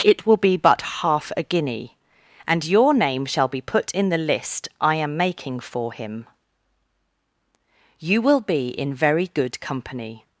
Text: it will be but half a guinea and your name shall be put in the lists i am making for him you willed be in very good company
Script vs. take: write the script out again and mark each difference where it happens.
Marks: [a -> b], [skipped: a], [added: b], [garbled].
it will be but half a guinea and your name shall be put in the [lists -> list] i am making for him you [willed -> will] be in very good company